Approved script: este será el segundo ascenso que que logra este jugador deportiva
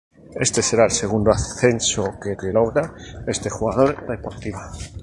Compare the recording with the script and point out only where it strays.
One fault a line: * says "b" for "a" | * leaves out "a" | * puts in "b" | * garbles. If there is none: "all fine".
all fine